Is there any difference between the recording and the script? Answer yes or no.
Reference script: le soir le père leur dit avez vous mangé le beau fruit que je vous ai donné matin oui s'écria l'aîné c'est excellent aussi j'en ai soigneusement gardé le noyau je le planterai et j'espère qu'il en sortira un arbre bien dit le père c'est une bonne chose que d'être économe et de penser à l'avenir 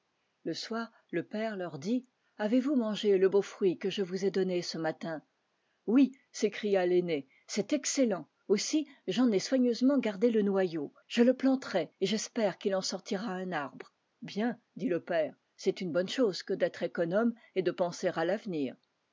yes